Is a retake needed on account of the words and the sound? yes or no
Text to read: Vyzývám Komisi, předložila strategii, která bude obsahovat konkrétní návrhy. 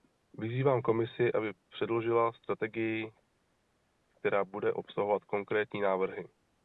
yes